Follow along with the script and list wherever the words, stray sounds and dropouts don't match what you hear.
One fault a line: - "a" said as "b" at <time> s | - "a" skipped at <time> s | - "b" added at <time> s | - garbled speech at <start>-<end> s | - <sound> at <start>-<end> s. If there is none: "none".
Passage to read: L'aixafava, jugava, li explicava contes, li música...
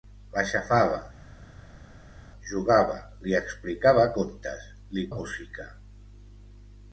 none